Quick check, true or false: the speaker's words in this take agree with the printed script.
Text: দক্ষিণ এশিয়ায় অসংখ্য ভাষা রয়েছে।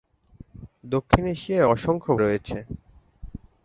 false